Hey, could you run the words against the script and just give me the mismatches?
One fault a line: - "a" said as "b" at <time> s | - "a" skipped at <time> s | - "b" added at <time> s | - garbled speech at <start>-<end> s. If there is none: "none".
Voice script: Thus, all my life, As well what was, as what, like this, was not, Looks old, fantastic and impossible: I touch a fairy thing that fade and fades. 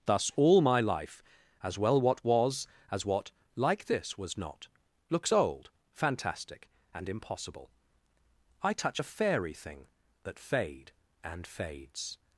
none